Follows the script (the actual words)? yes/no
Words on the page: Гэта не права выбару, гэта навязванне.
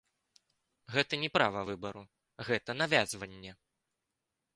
yes